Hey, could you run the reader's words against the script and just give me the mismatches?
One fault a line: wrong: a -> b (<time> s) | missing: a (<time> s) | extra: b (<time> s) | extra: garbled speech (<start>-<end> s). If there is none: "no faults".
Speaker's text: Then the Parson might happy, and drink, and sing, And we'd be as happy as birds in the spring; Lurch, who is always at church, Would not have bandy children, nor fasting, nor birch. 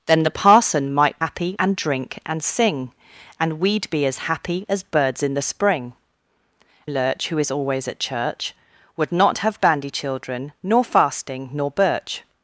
no faults